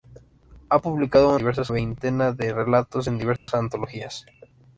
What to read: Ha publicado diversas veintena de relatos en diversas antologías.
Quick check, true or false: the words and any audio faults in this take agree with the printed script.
false